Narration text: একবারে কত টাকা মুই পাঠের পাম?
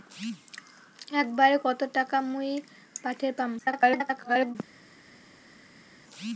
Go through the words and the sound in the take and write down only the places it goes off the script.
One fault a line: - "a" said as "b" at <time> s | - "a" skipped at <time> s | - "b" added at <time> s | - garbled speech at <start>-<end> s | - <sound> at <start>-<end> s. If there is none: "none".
- garbled speech at 3.6-4.6 s